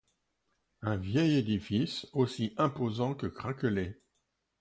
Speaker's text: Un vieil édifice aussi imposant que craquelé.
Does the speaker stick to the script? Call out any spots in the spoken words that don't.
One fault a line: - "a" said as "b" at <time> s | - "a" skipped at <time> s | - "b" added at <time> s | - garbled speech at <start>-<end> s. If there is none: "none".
none